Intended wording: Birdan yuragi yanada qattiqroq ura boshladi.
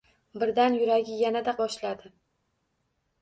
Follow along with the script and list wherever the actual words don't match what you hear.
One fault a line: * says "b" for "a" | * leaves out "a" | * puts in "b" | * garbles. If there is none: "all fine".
* leaves out "qattiqroq ura"